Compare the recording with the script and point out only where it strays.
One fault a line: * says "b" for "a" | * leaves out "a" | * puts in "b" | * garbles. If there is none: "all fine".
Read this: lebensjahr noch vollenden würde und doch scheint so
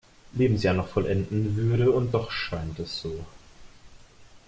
* puts in "es"